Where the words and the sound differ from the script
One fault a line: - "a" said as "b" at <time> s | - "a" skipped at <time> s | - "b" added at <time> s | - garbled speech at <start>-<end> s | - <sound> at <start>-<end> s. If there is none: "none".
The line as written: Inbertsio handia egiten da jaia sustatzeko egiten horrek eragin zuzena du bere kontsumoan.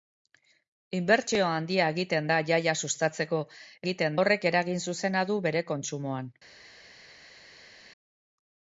none